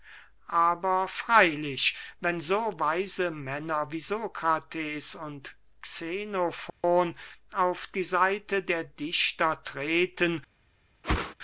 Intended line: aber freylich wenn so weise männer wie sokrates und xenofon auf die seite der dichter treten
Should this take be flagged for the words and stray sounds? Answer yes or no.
yes